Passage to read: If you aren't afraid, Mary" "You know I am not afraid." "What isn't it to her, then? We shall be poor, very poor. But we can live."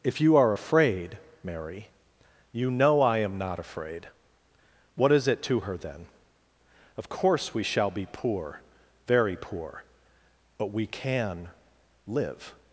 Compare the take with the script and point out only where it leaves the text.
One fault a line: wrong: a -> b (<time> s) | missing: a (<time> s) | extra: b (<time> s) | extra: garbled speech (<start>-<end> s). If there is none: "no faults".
wrong: aren't -> are (0.3 s)
wrong: isn't -> is (5.1 s)
extra: Of course (7.0 s)